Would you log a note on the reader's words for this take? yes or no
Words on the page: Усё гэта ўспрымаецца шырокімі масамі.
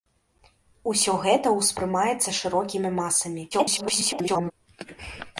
yes